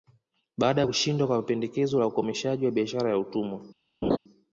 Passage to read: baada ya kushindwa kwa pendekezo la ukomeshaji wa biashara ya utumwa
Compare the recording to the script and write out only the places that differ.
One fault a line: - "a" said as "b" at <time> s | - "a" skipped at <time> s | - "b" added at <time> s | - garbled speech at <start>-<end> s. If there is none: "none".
none